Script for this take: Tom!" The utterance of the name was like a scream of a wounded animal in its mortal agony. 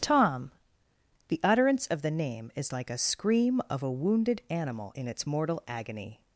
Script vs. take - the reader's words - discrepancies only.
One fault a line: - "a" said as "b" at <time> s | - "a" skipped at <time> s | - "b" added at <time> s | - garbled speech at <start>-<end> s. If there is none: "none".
- "was" said as "is" at 2.5 s